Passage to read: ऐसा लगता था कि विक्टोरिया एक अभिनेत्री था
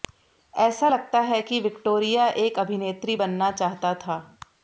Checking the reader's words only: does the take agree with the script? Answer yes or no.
no